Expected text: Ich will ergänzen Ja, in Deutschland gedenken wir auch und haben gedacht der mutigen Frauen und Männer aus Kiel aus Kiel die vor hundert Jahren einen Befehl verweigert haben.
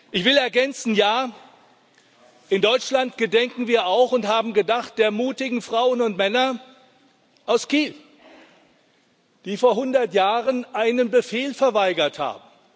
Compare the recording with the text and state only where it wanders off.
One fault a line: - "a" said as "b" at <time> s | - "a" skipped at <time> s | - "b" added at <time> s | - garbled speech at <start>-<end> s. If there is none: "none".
- "aus Kiel" skipped at 7.9 s